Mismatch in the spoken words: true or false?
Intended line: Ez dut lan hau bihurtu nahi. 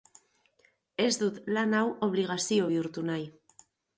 true